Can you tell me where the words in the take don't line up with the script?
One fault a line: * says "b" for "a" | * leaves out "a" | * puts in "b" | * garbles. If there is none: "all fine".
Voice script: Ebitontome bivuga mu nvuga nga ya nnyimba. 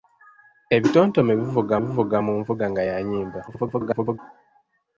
* puts in "bivuga"
* garbles